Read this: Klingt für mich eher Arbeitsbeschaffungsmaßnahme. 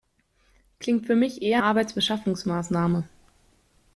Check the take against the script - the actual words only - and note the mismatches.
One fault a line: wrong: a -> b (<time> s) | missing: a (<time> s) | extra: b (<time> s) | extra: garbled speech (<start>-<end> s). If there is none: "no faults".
no faults